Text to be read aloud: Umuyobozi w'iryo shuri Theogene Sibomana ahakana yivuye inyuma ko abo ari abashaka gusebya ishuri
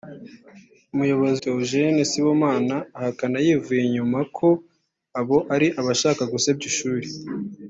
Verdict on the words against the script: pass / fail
fail